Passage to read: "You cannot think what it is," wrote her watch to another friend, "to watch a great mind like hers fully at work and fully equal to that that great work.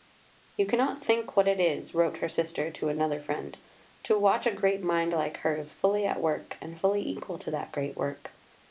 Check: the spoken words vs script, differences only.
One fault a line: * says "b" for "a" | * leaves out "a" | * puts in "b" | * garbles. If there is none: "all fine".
* says "sister" for "watch"
* leaves out "that"